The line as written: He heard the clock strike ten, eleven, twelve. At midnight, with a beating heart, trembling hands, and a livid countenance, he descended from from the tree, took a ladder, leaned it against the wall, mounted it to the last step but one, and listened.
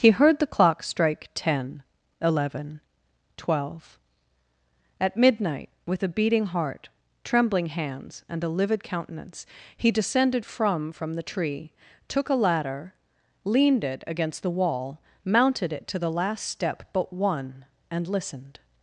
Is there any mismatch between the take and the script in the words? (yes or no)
no